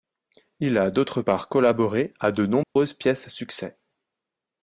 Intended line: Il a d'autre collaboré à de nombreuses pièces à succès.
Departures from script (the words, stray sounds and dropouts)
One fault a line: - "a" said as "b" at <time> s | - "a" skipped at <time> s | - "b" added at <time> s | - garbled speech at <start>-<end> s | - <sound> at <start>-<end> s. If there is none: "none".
- "part" added at 1.2 s
- dropout at 2.6-2.8 s